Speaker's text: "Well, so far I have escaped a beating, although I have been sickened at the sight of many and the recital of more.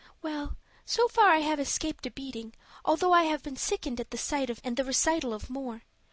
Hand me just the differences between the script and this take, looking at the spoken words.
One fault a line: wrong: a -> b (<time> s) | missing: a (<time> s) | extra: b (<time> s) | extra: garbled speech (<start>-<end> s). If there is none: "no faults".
missing: many (4.6 s)